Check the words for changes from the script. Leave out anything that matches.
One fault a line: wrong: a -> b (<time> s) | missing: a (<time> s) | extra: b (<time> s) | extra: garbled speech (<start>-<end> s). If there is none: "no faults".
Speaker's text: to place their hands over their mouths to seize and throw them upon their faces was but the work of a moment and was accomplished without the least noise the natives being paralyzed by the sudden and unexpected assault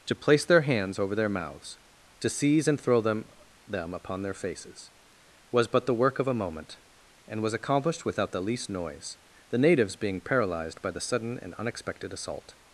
extra: them (3.7 s)